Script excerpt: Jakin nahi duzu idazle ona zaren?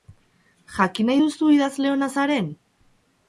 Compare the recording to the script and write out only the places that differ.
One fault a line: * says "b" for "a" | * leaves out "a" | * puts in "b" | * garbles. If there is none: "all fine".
all fine